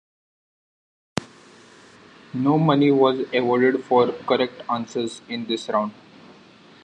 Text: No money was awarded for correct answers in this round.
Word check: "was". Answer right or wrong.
right